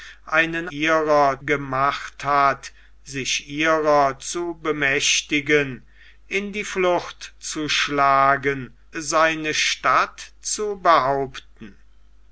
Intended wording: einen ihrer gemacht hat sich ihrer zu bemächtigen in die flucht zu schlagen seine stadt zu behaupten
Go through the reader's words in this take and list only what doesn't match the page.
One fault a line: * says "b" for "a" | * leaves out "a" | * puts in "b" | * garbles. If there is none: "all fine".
all fine